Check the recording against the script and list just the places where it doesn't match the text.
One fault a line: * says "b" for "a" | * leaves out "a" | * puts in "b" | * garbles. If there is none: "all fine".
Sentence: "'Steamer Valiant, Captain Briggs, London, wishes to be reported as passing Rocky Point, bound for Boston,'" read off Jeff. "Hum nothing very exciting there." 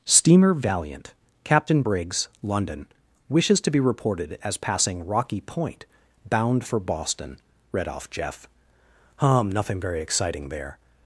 all fine